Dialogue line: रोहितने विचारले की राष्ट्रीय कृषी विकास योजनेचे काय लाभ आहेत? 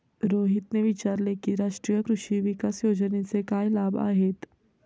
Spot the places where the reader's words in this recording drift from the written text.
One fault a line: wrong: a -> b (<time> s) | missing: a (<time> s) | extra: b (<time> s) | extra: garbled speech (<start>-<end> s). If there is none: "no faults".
no faults